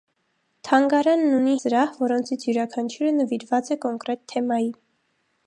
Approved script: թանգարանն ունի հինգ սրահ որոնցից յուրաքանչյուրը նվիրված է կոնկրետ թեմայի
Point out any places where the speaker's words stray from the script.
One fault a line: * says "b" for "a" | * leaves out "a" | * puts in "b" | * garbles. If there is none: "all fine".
* leaves out "հինգ"